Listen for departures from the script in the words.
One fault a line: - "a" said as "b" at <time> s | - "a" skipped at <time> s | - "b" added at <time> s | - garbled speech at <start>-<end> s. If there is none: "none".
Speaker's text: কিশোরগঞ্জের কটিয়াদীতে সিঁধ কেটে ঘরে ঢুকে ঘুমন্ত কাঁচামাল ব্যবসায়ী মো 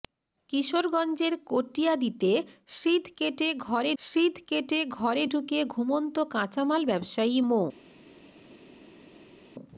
- "সিঁধ কেটে ঘরে" added at 4.0 s